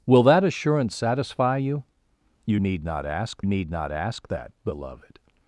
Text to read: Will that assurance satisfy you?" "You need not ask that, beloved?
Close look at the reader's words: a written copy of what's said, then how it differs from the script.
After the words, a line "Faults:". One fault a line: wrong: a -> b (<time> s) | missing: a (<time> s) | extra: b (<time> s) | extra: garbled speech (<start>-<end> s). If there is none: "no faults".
Will that assurance satisfy you?" "You need not ask need not ask that, beloved?
Faults:
extra: need not ask (3.4 s)